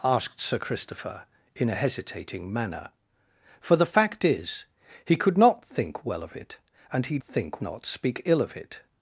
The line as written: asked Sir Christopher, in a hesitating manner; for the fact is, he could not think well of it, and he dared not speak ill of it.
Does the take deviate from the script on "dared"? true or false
true